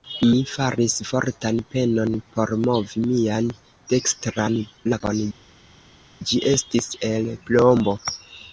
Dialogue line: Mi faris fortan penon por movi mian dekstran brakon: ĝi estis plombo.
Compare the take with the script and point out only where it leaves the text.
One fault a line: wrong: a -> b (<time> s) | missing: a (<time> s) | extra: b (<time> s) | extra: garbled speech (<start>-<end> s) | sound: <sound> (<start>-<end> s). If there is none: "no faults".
extra: el (7.1 s)